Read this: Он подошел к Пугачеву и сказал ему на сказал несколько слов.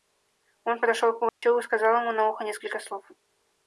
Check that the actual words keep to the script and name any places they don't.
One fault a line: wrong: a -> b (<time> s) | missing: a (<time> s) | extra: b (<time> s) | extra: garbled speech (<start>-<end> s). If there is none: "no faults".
wrong: сказал -> ухо (2.3 s)